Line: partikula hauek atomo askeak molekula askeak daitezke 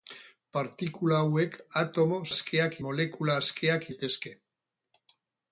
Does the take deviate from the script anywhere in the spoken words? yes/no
no